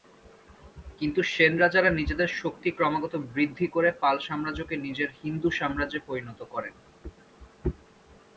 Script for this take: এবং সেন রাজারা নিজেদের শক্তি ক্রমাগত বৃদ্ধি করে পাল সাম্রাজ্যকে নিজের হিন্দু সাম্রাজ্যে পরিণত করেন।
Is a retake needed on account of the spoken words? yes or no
yes